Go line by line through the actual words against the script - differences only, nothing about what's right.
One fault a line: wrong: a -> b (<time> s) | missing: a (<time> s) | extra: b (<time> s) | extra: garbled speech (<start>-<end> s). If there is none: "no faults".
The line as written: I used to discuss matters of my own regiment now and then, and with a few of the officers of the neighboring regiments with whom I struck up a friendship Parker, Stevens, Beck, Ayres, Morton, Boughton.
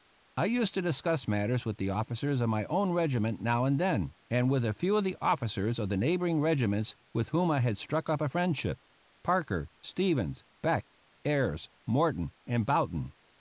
extra: with the officers (1.6 s)
extra: had (7.6 s)
extra: and (12.5 s)